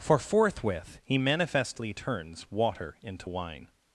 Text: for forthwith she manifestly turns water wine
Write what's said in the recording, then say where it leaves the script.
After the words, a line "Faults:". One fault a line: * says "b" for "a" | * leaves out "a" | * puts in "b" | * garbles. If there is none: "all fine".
for forthwith he manifestly turns water into wine
Faults:
* says "he" for "she"
* puts in "into"